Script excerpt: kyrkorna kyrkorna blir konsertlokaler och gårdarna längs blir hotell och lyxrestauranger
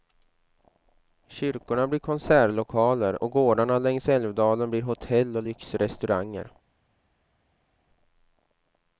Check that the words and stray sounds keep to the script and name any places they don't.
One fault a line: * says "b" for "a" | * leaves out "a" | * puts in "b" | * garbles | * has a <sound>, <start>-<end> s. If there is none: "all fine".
* leaves out "kyrkorna"
* puts in "älvdalen"